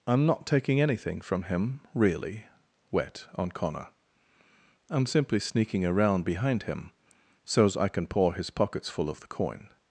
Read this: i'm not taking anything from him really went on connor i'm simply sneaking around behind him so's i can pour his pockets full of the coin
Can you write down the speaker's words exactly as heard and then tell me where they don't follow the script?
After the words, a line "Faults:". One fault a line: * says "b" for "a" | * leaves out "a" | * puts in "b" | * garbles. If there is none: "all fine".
i'm not taking anything from him really wet on connor i'm simply sneaking around behind him so's i can pour his pockets full of the coin
Faults:
* says "wet" for "went"